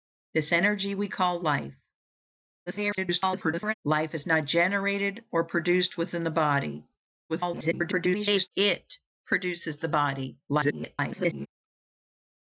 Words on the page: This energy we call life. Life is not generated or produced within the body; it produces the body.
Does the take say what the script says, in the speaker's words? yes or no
no